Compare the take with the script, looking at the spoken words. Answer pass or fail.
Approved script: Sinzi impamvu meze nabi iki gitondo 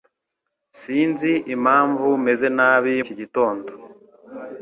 pass